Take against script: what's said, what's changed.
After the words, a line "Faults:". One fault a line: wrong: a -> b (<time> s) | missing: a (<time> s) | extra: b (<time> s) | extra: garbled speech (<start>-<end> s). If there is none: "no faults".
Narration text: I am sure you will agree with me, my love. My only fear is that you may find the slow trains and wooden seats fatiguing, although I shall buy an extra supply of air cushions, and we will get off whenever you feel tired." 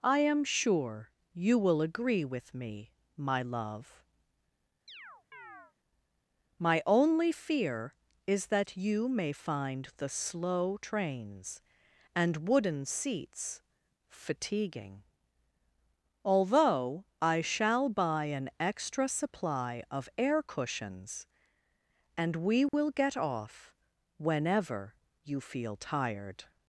I am sure you will agree with me, my love. My only fear is that you may find the slow trains and wooden seats fatiguing, although I shall buy an extra supply of air cushions, and we will get off whenever you feel tired."
Faults:
no faults